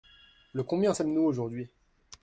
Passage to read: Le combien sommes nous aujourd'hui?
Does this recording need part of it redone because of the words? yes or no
no